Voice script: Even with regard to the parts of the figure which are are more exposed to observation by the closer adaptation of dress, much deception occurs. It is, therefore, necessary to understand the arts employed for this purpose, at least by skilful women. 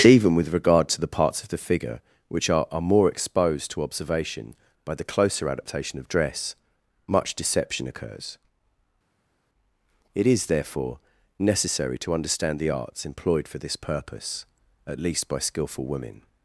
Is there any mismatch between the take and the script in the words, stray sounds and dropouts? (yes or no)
no